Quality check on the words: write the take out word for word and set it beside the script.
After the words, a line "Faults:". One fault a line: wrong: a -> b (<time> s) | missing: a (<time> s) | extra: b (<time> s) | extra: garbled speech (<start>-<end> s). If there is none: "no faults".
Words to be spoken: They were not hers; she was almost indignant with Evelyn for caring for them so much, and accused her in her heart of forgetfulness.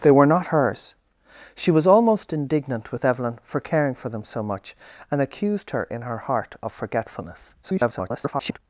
They were not hers; she was almost indignant with Evelyn for caring for them so much, and accused her in her heart of forgetfulness. [garbled]
Faults:
extra: garbled speech (7.6-8.6 s)